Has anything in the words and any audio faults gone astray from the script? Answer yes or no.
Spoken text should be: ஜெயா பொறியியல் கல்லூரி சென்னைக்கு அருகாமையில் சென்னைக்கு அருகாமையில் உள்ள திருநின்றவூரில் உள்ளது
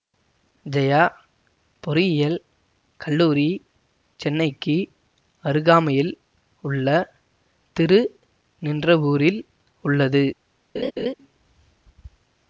yes